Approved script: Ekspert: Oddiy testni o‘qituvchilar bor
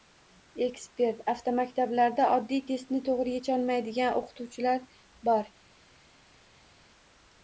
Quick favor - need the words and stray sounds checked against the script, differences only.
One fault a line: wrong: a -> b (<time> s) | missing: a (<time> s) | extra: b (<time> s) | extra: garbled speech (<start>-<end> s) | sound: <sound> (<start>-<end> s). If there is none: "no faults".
extra: Avtomaktablarda (1.3 s)
extra: to‘g‘ri yecholmaydigan (3.1 s)